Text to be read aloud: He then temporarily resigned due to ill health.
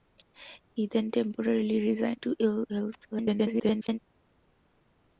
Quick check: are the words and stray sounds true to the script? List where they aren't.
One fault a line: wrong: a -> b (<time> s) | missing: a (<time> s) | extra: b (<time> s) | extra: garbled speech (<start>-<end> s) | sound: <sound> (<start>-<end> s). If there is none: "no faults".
missing: due (2.2 s)
extra: garbled speech (3.1-4.0 s)